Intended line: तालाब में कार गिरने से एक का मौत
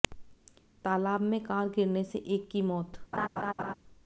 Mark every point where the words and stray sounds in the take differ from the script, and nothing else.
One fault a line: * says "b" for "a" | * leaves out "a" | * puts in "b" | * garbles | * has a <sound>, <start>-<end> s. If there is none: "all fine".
* says "की" for "का"
* has a laugh, 3.1-3.7 s